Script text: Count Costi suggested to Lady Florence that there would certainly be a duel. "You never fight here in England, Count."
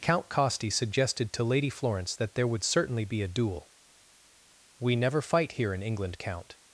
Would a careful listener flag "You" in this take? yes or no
yes